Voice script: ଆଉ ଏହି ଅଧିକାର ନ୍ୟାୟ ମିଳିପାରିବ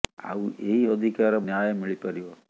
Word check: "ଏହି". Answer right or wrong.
right